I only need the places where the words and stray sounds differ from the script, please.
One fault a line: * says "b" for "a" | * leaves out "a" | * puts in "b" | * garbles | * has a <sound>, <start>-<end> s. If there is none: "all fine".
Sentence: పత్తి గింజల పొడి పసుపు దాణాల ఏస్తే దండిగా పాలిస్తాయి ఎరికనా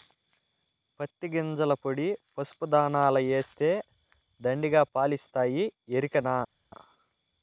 all fine